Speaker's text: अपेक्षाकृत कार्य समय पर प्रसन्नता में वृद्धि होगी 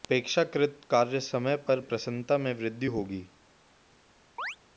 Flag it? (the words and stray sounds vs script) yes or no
yes